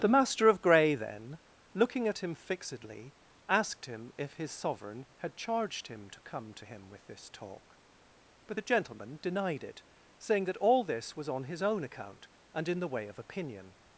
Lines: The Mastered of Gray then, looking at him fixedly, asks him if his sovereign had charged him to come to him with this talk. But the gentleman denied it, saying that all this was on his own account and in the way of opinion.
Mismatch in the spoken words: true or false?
true